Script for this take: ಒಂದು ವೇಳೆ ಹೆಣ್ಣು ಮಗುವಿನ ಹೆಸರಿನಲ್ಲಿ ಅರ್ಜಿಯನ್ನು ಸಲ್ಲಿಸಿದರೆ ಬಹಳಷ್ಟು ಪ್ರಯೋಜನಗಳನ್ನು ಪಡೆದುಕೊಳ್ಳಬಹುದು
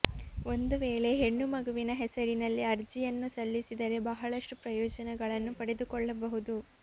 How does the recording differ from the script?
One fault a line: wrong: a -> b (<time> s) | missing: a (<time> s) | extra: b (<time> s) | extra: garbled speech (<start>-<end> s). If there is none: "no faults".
no faults